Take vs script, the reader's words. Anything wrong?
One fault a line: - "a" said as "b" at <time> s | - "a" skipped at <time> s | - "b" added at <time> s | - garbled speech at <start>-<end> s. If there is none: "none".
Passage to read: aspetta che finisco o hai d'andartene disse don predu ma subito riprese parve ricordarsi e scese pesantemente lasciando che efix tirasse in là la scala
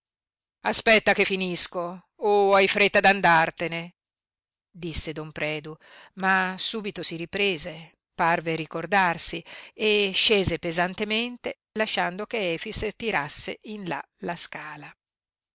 - "fretta" added at 2.7 s
- "si" added at 7.0 s